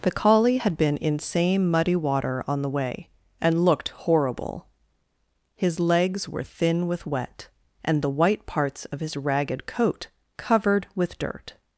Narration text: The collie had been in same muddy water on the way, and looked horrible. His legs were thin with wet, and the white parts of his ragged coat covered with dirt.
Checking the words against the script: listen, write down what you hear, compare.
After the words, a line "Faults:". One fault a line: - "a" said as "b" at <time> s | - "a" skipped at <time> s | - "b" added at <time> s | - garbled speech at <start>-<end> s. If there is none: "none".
The collie had been in same muddy water on the way, and looked horrible. His legs were thin with wet, and the white parts of his ragged coat covered with dirt.
Faults:
none